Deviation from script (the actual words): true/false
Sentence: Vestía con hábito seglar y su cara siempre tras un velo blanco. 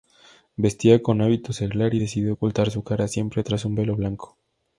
true